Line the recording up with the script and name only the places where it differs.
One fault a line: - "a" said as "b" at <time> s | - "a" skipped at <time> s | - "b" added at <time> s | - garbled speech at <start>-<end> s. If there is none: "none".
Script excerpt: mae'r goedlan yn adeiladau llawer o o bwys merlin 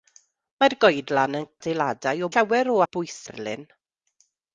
none